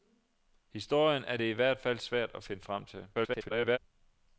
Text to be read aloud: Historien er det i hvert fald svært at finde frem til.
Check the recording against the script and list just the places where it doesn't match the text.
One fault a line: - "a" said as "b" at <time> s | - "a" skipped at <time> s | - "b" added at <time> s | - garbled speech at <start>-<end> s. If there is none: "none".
- garbled speech at 3.1-3.8 s